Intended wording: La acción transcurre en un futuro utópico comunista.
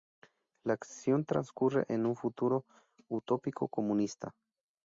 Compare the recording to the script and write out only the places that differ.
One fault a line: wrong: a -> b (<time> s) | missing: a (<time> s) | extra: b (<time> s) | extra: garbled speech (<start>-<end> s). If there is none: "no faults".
no faults